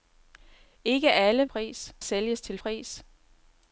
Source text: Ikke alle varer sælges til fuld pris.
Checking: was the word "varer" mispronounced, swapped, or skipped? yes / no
yes